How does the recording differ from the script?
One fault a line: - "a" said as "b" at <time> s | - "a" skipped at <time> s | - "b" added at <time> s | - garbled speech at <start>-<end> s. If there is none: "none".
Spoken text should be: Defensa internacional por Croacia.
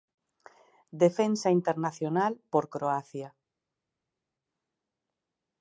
none